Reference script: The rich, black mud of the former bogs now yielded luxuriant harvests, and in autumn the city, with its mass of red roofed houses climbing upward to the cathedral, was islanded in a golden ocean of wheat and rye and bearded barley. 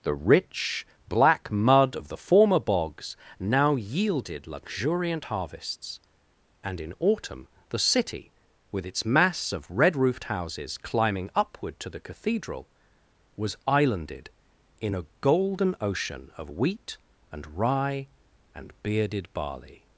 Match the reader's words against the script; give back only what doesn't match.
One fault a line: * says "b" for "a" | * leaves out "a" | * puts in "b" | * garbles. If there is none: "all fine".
all fine